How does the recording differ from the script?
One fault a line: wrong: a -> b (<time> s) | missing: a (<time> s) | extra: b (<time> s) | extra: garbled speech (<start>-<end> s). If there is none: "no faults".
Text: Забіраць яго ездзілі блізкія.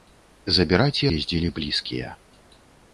missing: яго (1.0 s)